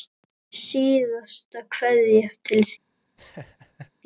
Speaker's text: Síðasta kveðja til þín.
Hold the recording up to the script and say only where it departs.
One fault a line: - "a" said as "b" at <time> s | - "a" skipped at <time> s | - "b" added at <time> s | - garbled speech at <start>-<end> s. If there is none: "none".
none